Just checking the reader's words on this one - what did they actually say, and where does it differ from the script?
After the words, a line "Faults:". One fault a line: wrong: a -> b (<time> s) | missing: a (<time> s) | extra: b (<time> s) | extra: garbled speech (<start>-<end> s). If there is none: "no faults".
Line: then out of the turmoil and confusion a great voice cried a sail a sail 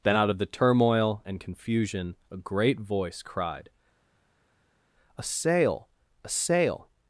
then out of the turmoil and confusion a great voice cried a sail a sail
Faults:
no faults